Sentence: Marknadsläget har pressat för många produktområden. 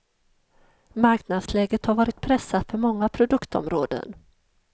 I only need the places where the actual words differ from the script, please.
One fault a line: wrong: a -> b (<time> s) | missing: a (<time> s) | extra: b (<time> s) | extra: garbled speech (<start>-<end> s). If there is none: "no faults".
extra: varit (1.9 s)